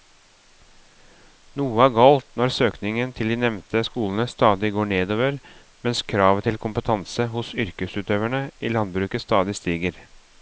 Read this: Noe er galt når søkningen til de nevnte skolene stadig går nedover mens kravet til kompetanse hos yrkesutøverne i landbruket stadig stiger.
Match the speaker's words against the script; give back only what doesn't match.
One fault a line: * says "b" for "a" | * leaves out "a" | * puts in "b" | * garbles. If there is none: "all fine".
all fine